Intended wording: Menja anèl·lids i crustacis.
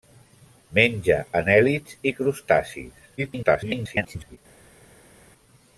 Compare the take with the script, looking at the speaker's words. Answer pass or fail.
fail